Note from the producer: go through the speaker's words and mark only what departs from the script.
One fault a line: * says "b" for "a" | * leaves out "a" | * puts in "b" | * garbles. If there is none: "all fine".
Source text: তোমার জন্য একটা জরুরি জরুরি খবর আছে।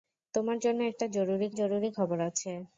all fine